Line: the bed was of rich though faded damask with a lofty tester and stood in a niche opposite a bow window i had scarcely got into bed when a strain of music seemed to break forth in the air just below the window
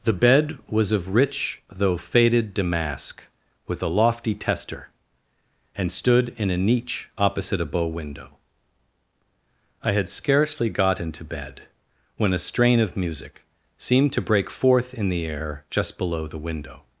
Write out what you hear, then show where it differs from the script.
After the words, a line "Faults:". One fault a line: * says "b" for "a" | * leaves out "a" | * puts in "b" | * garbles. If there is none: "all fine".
the bed was of rich though faded damask with a lofty tester and stood in a niche opposite a bow window i had scarcely got into bed when a strain of music seemed to break forth in the air just below the window
Faults:
all fine